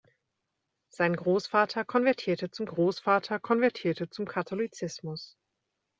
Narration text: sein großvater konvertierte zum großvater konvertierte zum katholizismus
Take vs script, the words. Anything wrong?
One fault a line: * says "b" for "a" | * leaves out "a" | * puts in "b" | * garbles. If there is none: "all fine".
all fine